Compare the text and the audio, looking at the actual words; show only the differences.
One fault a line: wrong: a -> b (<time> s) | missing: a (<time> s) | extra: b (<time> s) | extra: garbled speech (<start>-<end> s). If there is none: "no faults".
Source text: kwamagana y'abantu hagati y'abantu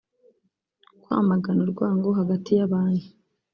wrong: y'abantu -> urwango (1.6 s)